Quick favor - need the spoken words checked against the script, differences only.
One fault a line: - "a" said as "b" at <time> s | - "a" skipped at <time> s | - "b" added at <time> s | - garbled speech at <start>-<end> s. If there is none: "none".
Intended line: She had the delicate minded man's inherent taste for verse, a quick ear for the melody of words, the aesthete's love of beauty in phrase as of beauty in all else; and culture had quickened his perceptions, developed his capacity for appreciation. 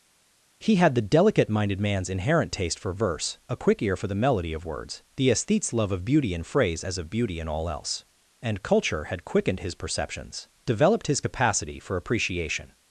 - "She" said as "He" at 0.6 s